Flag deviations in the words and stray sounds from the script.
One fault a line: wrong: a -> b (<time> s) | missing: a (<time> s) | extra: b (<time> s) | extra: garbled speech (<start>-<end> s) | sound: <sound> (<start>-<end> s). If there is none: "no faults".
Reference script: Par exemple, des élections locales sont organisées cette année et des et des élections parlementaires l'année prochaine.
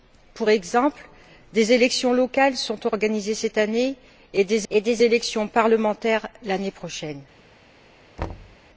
sound: thud (8.2-8.6 s)